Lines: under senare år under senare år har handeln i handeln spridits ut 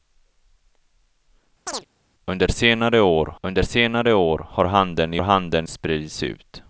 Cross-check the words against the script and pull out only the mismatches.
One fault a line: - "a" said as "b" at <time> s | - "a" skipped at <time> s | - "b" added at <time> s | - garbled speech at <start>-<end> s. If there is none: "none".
none